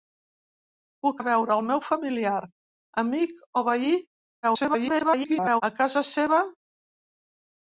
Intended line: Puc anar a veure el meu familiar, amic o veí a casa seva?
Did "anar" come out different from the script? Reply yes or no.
yes